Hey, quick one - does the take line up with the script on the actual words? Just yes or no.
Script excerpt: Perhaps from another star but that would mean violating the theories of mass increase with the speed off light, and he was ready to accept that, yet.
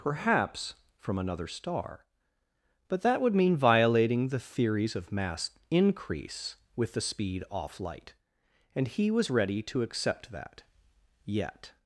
yes